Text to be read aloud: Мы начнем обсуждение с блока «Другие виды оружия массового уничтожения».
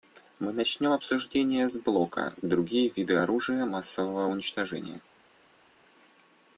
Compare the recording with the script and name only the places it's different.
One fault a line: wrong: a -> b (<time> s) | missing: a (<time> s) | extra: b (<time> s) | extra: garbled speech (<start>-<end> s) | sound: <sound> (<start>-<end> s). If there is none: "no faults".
no faults